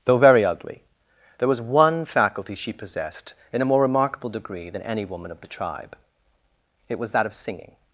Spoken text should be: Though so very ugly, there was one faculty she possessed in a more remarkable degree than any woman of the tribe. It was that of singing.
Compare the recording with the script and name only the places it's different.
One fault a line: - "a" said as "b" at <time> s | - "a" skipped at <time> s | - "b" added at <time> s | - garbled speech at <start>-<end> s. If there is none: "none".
- "so" skipped at 0.2 s